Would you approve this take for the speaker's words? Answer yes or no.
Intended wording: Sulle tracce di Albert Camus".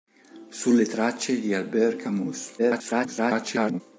no